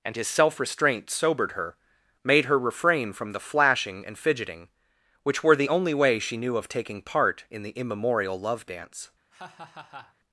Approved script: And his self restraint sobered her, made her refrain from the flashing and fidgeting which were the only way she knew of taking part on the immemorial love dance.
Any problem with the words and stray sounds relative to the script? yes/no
yes